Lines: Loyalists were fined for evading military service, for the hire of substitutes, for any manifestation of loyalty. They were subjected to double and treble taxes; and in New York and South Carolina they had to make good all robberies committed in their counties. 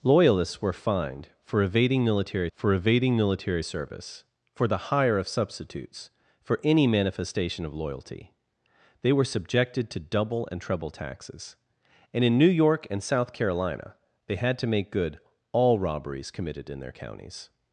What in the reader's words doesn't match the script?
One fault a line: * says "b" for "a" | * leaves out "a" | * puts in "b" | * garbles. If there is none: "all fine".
* puts in "for evading military"